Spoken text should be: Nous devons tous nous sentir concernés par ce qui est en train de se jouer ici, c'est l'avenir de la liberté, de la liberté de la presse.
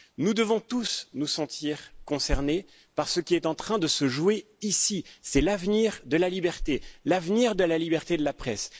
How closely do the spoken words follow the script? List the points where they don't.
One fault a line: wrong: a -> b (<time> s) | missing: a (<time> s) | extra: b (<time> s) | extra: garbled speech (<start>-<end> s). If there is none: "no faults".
extra: l'avenir (7.0 s)